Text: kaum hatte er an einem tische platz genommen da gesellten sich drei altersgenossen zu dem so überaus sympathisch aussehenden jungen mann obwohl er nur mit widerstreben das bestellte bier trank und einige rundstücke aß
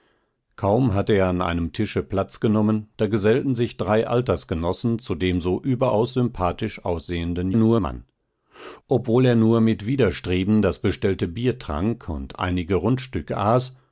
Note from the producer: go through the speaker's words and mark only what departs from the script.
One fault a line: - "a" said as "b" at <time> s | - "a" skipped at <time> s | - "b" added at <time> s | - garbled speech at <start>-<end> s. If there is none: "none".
- "jungen" said as "nur" at 7.5 s